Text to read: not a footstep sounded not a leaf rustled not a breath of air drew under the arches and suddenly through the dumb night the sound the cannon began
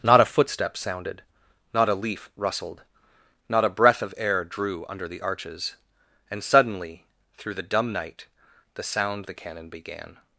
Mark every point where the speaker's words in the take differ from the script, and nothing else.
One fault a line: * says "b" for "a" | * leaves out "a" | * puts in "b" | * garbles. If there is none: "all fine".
all fine